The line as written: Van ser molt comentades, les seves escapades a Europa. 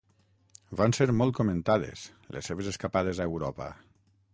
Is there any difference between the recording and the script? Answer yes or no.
no